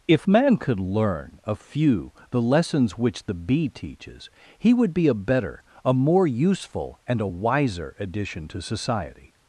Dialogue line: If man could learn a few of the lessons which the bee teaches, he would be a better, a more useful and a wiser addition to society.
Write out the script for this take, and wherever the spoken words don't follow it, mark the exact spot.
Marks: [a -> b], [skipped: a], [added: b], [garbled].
If man could learn a few [skipped: of] the lessons which the bee teaches, he would be a better, a more useful and a wiser addition to society.